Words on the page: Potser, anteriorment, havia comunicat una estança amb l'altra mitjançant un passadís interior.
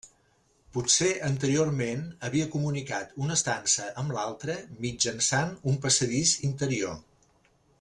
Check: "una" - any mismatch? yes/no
no